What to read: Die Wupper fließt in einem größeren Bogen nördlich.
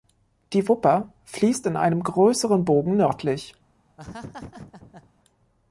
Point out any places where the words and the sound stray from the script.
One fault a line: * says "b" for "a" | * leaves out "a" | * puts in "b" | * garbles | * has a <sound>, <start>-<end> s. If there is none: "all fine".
* has a laugh, 4.0-5.1 s